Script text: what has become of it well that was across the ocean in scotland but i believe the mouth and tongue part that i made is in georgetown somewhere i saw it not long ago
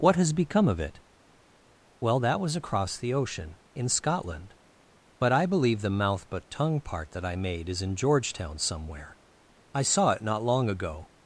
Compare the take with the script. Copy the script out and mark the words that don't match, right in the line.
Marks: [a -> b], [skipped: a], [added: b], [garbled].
what has become of it well that was across the ocean in scotland but i believe the mouth [and -> but] tongue part that i made is in georgetown somewhere i saw it not long ago